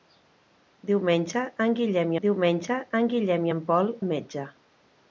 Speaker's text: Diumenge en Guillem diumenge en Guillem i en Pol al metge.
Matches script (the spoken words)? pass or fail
pass